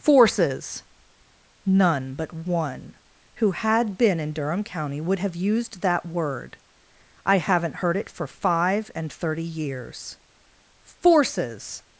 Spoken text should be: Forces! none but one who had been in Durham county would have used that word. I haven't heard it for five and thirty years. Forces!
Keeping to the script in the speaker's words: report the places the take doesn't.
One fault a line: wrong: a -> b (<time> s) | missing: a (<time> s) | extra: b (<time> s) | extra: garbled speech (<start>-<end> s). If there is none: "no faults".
no faults